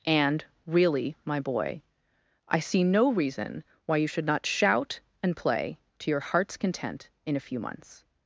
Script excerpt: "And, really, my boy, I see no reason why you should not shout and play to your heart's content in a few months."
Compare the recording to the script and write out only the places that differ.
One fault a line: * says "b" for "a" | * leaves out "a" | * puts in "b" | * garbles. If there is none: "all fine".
all fine